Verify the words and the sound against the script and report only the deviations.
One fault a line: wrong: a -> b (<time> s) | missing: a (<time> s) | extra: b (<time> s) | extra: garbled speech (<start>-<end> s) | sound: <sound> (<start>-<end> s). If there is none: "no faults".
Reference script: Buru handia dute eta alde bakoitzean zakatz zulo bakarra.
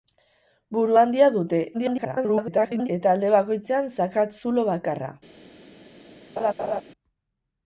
extra: garbled speech (1.7-2.9 s)
sound: laugh (6.4-6.8 s)